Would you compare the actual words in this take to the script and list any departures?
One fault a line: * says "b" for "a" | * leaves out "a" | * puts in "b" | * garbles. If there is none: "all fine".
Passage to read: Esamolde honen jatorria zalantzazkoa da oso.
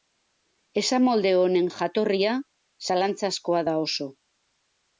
all fine